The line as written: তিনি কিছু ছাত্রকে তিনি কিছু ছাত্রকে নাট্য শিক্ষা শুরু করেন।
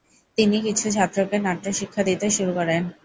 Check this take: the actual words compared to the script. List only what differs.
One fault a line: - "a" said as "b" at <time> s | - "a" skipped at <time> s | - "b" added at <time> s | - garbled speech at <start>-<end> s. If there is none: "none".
- "তিনি কিছু ছাত্রকে" skipped at 1.4 s
- "দিতে" added at 2.1 s